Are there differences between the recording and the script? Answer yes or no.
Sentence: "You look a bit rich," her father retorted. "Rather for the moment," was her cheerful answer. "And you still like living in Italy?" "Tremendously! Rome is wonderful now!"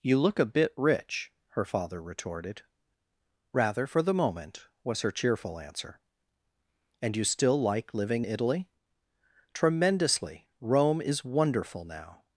yes